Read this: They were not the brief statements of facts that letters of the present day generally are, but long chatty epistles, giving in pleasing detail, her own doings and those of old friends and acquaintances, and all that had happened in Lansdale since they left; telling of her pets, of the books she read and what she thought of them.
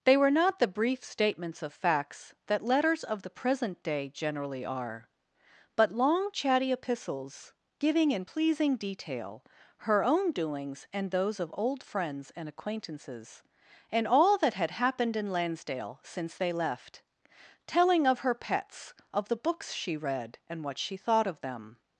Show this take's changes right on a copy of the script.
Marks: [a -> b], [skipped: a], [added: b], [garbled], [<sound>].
They were not the brief statements of facts that letters of the present day generally are, but long chatty epistles, giving in pleasing detail, her own doings and those of old friends and acquaintances, and all that had happened in Lansdale since they left; telling of her pets, of the books she read and what she thought of them.